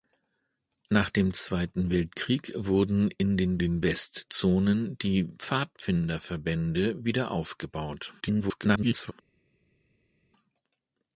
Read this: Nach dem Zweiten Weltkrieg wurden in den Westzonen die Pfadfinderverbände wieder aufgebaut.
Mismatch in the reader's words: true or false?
true